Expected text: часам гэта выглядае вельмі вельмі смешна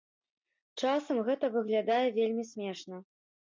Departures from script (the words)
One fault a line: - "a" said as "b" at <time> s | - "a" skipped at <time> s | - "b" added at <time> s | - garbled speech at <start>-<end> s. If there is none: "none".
- "вельмі" skipped at 2.5 s